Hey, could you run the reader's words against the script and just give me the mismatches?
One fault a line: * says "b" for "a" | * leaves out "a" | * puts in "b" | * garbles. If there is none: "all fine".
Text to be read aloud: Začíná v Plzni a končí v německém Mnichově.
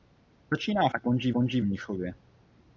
* leaves out "v Plzni"
* says "končí" for "německém"